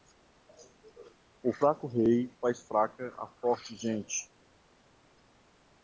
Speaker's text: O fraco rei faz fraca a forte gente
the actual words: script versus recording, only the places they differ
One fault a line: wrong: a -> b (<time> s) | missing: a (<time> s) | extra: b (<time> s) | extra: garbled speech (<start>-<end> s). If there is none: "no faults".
no faults